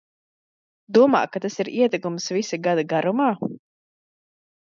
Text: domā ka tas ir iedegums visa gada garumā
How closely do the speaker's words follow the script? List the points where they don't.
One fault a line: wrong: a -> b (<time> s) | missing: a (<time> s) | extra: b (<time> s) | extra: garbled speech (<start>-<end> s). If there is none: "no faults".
no faults